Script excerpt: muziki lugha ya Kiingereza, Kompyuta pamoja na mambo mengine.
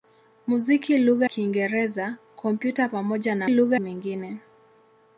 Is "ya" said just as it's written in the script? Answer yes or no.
no